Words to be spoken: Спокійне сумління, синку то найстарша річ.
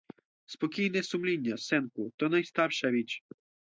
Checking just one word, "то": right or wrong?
right